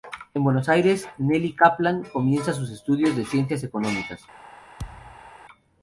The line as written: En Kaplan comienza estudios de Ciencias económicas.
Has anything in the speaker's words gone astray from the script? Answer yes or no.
yes